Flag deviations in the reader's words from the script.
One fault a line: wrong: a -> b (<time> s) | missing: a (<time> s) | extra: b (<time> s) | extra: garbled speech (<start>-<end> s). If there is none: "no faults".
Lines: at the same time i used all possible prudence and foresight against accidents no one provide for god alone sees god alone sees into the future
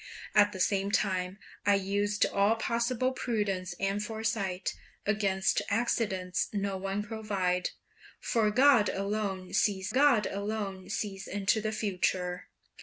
no faults